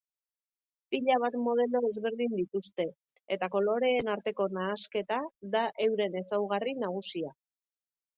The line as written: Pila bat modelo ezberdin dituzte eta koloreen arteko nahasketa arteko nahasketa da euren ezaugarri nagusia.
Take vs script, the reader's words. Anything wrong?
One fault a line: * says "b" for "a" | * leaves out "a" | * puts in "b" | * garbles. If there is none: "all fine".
* leaves out "arteko nahasketa"